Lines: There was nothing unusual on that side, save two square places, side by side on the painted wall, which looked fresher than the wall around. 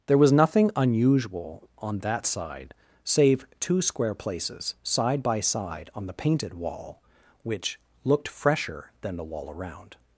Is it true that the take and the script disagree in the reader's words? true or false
false